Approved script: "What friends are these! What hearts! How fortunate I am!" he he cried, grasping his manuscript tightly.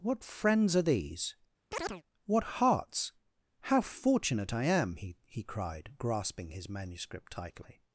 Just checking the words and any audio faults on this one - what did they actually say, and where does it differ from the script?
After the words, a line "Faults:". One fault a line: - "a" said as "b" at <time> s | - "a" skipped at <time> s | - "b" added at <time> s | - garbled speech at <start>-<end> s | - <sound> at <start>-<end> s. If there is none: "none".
"What friends are these! What hearts! How fortunate I am!" he he cried, grasping his manuscript tightly.
Faults:
- chirp at 1.7-2.0 s